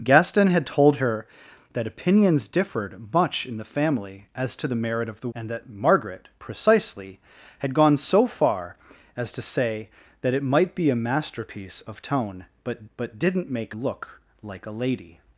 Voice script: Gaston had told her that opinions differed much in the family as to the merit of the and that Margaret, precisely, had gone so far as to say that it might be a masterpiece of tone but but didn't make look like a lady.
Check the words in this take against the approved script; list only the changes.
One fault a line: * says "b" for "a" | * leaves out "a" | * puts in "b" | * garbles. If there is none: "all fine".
all fine